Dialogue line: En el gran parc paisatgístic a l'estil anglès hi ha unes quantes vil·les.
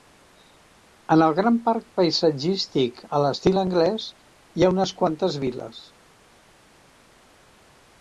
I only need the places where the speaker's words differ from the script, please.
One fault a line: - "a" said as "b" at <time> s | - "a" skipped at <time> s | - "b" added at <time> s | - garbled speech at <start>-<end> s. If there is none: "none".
none